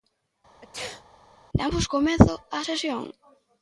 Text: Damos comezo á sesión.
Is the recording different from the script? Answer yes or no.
no